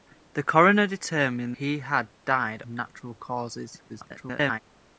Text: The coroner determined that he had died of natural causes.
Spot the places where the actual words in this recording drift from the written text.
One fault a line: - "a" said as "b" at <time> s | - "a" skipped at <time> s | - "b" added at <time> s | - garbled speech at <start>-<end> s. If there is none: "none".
- "that" skipped at 1.6 s
- "of" skipped at 2.6 s
- garbled speech at 3.9-4.6 s